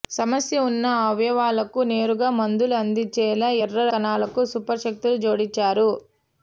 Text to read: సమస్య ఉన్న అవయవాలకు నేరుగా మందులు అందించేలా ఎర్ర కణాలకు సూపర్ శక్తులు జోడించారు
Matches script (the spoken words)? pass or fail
pass